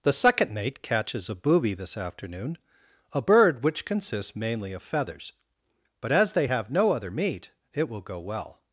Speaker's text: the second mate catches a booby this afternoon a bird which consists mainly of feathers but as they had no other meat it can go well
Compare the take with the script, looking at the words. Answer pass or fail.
fail